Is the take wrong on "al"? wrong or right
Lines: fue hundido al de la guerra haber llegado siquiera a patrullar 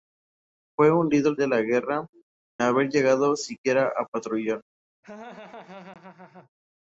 right